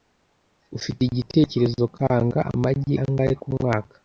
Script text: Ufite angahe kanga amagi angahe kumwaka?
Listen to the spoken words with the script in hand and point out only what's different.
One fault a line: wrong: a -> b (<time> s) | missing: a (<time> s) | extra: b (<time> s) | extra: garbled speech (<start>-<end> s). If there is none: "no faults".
wrong: angahe -> igitekerezo (1.0 s)